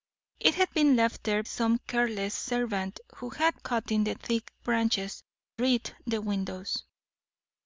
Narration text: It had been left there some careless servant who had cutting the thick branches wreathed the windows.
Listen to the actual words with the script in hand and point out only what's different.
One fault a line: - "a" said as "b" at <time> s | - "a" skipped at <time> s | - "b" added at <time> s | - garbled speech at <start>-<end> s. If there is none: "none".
none